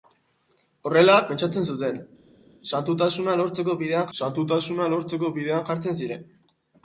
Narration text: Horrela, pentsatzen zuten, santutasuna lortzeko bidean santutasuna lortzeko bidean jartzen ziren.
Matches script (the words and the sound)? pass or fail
pass